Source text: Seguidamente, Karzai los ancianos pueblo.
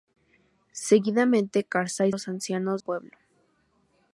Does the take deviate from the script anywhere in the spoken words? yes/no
no